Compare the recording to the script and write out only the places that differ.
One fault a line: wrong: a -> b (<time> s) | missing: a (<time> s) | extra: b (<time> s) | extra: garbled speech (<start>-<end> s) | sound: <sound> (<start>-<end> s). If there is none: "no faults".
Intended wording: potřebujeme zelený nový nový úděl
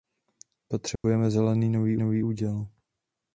sound: dropout (1.0-1.0 s)